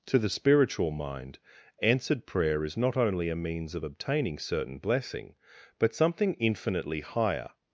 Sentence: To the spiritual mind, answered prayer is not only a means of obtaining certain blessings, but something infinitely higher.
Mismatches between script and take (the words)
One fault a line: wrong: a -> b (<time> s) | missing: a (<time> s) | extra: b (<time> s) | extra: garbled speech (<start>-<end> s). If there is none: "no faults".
wrong: blessings -> blessing (4.8 s)